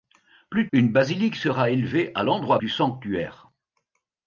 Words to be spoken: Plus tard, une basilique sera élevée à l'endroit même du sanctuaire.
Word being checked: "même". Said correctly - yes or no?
no